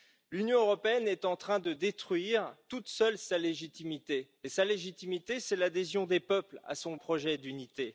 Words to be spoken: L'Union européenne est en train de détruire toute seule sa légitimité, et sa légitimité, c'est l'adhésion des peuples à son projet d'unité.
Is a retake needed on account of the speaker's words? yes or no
no